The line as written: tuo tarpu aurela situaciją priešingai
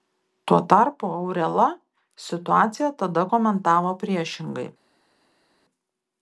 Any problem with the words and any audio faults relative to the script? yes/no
yes